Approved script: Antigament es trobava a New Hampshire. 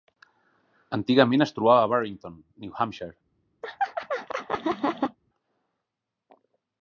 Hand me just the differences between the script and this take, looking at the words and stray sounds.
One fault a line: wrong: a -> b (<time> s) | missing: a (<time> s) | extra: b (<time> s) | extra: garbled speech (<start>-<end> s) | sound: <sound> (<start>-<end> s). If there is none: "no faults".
extra: Barrington (1.9 s)
sound: laugh (3.6-5.2 s)